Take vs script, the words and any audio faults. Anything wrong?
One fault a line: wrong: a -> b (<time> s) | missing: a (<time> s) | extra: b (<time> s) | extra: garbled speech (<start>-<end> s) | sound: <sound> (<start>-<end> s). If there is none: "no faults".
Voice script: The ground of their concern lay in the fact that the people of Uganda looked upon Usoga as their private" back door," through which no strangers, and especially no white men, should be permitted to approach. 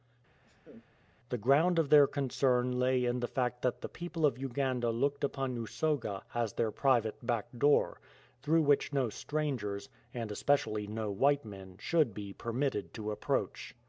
sound: laugh (0.4-0.9 s)